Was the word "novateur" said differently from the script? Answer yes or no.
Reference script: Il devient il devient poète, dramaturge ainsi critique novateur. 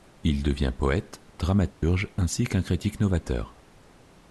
no